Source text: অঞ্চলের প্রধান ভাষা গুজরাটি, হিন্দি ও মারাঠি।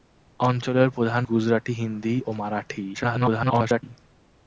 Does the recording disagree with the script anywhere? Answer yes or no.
yes